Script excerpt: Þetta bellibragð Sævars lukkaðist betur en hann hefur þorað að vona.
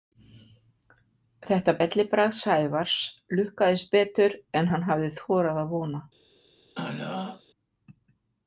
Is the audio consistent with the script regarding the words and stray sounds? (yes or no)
no